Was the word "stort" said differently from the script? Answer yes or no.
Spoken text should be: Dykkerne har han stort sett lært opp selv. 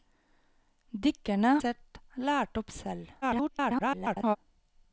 yes